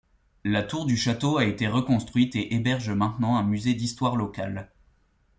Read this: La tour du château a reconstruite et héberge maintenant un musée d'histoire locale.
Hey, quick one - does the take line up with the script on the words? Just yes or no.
no